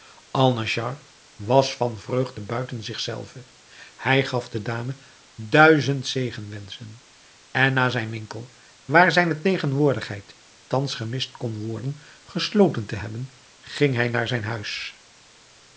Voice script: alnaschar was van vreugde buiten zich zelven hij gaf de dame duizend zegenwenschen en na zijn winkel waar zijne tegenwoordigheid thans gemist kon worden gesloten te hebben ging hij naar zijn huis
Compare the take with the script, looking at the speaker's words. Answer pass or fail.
pass